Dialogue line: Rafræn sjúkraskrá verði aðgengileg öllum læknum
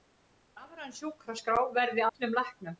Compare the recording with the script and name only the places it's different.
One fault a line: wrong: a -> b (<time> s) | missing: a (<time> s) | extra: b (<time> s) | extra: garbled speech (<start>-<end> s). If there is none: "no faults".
missing: aðgengileg (2.1 s)